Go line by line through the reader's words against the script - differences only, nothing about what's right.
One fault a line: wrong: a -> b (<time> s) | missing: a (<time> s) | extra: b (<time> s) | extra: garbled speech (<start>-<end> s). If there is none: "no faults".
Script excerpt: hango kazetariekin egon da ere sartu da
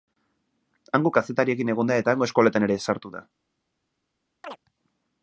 extra: eta hango eskoletan (2.0 s)